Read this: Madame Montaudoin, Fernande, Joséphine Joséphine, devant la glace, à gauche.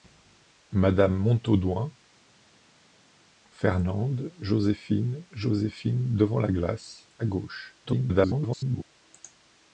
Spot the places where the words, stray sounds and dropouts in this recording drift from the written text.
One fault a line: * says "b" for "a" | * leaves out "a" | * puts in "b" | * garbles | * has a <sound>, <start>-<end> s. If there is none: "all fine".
* garbles